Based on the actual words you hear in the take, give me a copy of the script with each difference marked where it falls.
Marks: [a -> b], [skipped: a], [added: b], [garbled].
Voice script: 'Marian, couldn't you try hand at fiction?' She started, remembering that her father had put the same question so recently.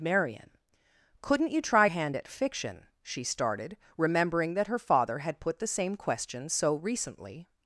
'Marian, couldn't you try hand at fiction?' She started, remembering that her father had put the same question so recently.